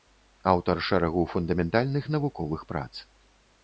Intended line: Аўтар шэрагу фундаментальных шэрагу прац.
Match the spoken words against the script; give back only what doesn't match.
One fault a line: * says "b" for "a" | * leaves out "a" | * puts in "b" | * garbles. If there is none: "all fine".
* says "навуковых" for "шэрагу"